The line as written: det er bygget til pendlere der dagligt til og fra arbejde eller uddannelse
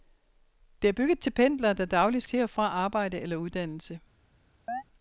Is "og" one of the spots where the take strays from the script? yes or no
no